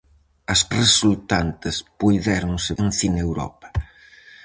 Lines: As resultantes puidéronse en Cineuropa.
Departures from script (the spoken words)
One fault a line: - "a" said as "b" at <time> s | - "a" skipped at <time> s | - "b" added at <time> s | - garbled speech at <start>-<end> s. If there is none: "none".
none